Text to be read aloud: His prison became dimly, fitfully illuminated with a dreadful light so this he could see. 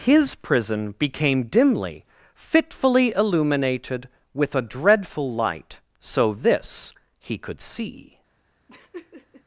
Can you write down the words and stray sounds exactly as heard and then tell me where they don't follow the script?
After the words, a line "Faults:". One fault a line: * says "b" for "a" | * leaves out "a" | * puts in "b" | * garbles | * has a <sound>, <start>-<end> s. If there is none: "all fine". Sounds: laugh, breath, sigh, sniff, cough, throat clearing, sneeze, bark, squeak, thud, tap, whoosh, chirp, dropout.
His prison became dimly, fitfully illuminated with a dreadful light so this he could see.
Faults:
* has a laugh, 8.7-9.4 s